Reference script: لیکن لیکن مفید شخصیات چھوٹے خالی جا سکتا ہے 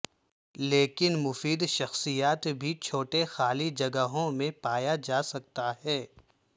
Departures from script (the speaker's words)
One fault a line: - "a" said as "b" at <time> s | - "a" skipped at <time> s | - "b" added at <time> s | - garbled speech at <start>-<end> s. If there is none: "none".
- "لیکن" skipped at 1.2 s
- "بھی" added at 2.6 s
- "جگہوں میں پایا" added at 3.8 s